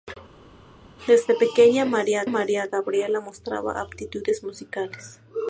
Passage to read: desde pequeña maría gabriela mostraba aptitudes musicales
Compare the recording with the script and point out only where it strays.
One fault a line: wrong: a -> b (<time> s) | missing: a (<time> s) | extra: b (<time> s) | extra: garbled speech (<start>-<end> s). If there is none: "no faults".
extra: maría (2.2 s)